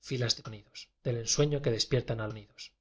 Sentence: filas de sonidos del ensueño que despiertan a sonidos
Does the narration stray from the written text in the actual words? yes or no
no